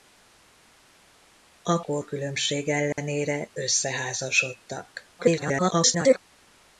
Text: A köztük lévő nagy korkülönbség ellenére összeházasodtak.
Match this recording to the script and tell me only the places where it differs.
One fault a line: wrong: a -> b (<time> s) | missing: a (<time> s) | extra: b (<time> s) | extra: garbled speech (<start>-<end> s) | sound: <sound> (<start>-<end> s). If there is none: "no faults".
missing: köztük lévő nagy (1.8 s)
sound: dropout (2.9-3.0 s)
extra: garbled speech (5.2-6.2 s)